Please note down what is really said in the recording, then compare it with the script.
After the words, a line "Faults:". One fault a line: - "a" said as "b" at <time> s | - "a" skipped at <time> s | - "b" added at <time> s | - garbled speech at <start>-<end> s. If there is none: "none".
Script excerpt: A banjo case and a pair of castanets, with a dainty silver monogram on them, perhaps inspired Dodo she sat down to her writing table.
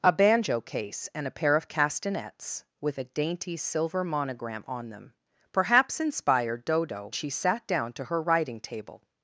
A banjo case and a pair of castanets, with a dainty silver monogram on them, perhaps inspired Dodo she sat down to her writing table.
Faults:
none